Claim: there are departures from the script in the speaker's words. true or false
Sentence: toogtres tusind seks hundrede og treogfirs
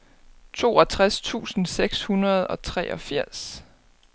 false